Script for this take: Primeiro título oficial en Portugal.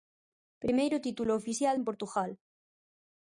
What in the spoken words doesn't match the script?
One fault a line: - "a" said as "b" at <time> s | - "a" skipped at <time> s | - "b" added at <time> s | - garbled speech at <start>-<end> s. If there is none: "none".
none